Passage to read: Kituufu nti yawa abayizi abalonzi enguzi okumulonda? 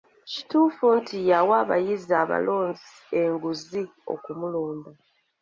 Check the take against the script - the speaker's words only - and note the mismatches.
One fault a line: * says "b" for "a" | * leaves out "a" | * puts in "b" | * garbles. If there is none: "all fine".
all fine